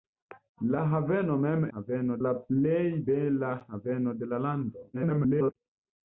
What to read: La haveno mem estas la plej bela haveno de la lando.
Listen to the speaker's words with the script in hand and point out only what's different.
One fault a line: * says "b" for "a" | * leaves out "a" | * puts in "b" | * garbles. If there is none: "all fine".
* says "haveno" for "estas"
* garbles